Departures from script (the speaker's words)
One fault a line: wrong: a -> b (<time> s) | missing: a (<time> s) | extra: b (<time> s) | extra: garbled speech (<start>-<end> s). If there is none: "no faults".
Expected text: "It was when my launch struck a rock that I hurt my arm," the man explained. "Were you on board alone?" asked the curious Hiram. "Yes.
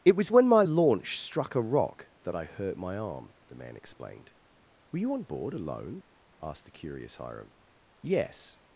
no faults